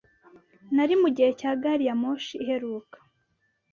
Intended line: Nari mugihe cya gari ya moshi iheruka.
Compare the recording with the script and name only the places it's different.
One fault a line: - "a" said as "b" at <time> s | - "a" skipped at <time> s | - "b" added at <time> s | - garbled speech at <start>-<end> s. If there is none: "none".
none